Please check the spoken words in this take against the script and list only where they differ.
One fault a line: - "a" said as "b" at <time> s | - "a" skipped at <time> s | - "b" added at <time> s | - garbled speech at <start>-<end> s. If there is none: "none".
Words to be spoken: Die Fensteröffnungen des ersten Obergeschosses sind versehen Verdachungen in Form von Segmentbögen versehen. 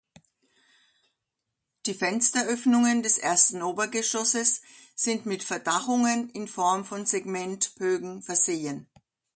- "versehen" said as "mit" at 5.2 s